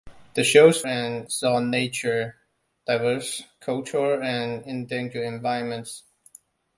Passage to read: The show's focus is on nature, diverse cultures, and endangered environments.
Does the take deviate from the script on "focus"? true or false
true